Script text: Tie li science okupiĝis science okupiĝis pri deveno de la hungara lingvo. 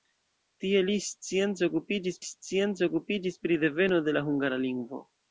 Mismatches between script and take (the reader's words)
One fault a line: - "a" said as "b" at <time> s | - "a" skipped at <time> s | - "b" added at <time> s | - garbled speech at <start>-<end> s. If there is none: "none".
none